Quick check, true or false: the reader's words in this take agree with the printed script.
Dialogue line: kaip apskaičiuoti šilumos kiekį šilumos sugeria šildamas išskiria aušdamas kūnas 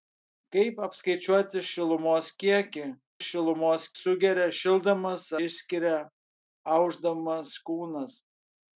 true